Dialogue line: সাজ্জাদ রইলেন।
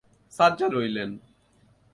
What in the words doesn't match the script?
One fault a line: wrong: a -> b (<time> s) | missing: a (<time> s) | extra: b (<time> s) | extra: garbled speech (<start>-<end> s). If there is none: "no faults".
no faults